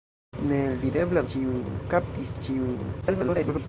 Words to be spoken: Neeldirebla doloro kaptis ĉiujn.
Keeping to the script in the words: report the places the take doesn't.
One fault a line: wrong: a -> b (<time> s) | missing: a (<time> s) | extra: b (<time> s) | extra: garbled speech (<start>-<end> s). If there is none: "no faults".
wrong: doloro -> ĉiujn (1.3 s)
extra: garbled speech (3.0-3.7 s)